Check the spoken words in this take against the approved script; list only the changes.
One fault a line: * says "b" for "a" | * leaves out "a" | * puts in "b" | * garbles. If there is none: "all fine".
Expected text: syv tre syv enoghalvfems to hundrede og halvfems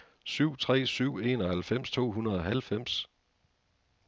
all fine